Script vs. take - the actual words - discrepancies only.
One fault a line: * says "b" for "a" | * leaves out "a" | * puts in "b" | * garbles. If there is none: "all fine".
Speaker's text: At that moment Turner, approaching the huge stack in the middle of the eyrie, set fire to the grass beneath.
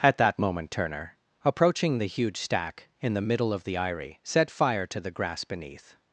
all fine